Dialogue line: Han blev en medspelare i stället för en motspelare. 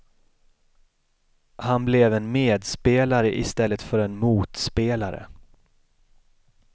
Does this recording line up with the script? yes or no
yes